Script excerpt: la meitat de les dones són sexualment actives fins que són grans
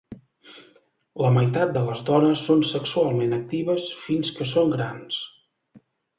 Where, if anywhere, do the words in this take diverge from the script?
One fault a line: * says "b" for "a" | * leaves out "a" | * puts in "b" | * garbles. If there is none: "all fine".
all fine